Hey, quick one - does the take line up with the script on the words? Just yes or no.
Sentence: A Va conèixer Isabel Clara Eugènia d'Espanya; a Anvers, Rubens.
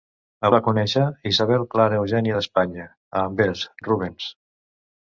yes